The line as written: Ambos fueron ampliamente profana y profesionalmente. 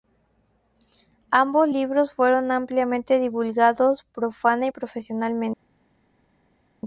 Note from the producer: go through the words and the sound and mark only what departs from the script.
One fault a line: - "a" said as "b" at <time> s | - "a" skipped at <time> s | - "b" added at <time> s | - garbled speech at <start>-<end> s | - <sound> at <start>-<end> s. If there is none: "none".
- "libros" added at 1.7 s
- "divulgados" added at 3.2 s